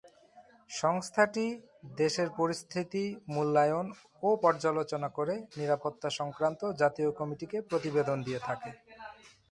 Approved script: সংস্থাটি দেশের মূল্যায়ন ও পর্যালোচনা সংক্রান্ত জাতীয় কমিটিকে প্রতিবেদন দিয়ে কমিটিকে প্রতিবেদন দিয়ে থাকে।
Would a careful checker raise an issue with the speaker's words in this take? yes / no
yes